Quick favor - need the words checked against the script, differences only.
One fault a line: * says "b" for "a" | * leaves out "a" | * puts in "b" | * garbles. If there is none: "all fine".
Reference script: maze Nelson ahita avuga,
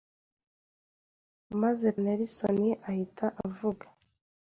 all fine